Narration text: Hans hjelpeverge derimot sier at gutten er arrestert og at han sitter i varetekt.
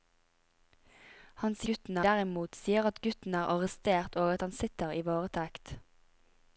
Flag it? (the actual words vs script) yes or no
yes